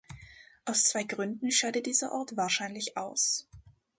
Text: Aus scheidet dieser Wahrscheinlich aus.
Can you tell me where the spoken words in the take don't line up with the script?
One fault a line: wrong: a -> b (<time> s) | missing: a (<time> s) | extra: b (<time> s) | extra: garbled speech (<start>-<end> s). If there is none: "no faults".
extra: zwei Gründen (0.8 s)
extra: Ort (2.1 s)